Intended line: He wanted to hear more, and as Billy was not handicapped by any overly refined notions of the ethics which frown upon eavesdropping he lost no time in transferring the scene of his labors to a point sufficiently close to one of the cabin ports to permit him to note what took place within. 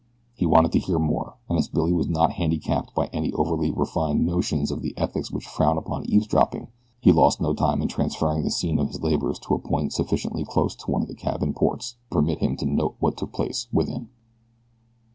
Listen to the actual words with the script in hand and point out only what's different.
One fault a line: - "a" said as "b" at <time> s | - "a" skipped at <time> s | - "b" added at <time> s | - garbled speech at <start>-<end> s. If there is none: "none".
none